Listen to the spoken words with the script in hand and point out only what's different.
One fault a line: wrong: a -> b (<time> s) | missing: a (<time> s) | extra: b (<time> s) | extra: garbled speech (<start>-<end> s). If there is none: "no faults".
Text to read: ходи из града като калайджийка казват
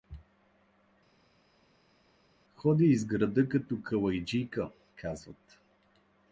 no faults